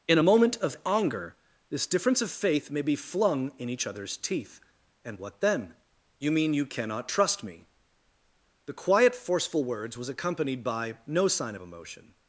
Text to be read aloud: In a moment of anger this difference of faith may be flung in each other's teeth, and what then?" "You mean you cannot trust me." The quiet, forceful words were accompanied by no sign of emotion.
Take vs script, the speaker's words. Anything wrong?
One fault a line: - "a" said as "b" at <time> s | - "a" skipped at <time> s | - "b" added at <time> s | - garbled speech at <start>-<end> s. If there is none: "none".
- "were" said as "was" at 10.0 s